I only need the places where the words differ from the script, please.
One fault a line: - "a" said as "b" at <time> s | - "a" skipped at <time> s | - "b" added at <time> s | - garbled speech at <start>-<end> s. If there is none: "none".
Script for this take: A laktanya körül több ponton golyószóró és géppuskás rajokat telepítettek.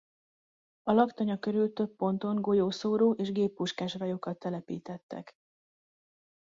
none